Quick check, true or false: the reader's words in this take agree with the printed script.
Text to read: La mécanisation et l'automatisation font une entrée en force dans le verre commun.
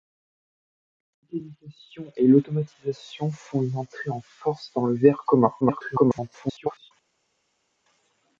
false